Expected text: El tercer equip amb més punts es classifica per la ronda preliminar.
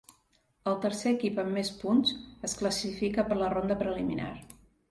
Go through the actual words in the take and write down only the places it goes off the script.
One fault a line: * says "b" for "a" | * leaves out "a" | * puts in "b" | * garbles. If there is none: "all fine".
all fine